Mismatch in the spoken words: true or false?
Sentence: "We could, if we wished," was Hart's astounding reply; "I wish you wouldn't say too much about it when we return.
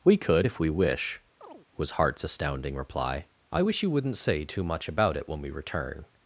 true